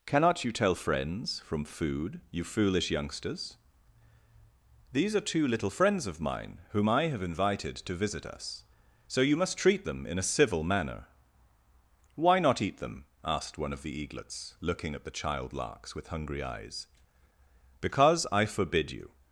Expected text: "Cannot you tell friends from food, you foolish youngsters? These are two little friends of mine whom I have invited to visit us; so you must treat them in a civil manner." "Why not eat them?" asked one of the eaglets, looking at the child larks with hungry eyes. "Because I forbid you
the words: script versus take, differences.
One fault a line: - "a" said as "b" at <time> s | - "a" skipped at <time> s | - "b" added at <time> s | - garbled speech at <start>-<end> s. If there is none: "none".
none